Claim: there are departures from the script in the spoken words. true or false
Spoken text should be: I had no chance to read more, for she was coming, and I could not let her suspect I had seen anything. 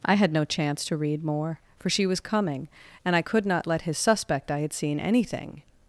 true